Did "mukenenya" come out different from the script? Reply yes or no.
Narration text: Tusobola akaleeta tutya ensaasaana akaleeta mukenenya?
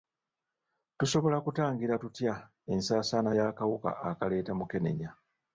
no